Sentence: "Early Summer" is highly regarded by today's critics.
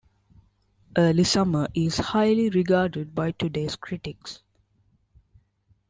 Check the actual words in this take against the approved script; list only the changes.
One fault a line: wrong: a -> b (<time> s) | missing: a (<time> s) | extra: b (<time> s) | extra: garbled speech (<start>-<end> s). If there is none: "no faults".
no faults